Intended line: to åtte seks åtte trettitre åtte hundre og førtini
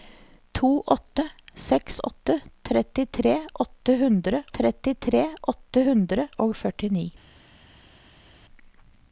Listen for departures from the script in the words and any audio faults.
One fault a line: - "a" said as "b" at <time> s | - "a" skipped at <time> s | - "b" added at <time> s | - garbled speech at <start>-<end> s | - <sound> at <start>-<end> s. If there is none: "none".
- "trettitre åtte hundre" added at 4.6 s